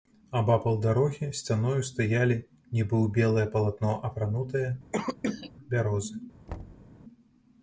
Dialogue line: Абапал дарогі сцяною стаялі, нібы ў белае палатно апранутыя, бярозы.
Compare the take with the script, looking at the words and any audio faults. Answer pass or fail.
fail